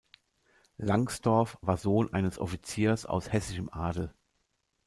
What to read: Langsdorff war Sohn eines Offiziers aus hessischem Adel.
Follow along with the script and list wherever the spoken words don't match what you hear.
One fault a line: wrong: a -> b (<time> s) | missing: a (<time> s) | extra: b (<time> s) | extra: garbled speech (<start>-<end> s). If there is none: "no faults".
no faults